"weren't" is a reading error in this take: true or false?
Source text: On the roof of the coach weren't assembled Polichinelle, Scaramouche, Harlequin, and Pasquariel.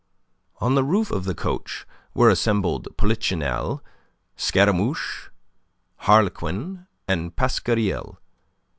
true